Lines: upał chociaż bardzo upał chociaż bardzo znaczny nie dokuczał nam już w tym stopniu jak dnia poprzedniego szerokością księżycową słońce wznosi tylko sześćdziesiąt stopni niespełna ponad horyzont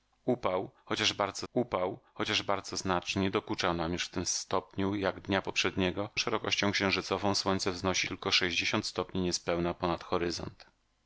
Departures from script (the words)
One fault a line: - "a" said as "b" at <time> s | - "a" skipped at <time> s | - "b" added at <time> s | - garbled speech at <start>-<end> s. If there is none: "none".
none